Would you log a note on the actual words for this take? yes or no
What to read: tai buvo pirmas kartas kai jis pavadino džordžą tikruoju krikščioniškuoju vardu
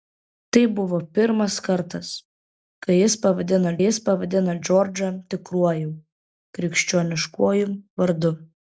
yes